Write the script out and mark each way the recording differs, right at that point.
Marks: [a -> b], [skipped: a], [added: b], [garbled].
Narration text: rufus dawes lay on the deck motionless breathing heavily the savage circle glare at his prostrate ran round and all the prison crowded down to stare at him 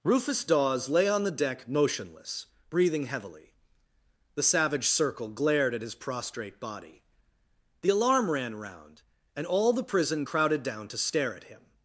rufus dawes lay on the deck motionless breathing heavily the savage circle [glare -> glared] at his prostrate [added: body the alarm] ran round and all the prison crowded down to stare at him